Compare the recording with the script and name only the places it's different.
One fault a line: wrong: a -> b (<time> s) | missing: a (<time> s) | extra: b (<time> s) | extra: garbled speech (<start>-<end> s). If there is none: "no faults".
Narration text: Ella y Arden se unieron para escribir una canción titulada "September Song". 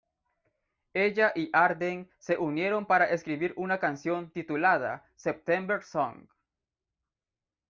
no faults